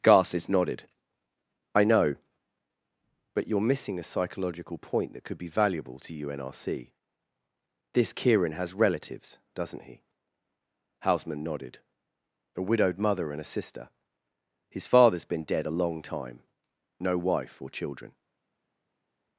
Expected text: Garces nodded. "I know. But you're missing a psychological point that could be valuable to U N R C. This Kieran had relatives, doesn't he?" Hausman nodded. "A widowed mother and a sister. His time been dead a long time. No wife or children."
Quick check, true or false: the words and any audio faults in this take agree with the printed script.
false